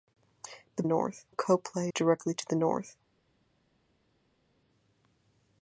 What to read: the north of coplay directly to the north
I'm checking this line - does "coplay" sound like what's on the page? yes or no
yes